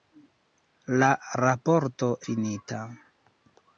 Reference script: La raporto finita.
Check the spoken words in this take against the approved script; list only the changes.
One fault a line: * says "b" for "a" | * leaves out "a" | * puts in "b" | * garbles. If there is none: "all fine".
all fine